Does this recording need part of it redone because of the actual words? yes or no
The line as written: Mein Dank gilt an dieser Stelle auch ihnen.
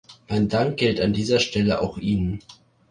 no